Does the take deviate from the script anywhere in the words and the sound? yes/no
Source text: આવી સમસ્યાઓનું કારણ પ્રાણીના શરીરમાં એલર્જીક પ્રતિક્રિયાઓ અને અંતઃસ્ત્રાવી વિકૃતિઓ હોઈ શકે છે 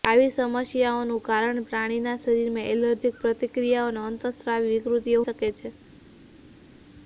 yes